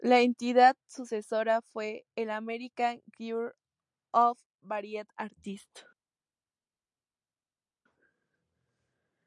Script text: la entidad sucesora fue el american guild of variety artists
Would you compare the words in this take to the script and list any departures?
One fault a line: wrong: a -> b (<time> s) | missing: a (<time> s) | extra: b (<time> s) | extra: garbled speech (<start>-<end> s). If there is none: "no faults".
no faults